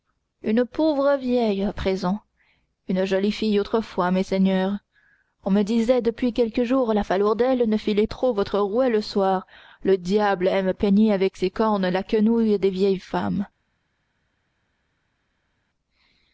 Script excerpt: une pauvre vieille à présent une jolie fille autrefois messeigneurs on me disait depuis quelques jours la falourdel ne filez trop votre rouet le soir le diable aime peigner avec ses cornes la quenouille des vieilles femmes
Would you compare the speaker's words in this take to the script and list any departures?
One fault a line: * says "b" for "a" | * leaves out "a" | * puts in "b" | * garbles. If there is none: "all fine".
all fine